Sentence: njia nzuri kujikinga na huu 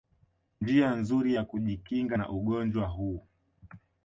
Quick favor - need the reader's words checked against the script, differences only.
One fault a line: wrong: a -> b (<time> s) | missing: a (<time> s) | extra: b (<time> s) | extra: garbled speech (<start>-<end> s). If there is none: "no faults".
extra: ya (1.3 s)
extra: ugonjwa (2.3 s)